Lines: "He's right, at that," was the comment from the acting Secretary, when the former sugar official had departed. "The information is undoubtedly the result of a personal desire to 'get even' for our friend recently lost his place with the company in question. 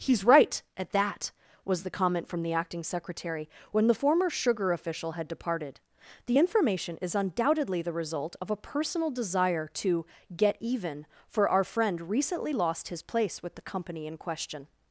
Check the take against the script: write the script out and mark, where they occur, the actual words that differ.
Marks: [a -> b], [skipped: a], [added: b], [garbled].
"He's right, at that," was the comment from the acting Secretary, when the former sugar official had departed. "The information is undoubtedly the result of a personal desire to 'get even' for our friend recently lost his place with the company in question.